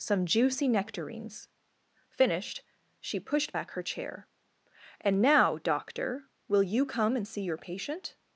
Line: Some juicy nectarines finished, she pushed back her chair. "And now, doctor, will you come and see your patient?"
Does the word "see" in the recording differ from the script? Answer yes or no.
no